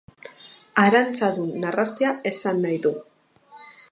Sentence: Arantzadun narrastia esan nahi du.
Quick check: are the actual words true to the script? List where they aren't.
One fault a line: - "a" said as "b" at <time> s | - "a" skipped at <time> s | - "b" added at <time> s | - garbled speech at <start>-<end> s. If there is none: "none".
none